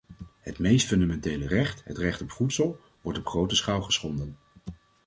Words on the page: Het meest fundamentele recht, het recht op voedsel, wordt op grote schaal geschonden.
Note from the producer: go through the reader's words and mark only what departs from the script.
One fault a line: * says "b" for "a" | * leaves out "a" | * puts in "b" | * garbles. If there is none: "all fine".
all fine